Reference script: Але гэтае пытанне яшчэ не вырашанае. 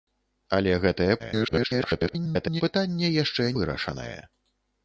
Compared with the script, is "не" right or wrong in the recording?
wrong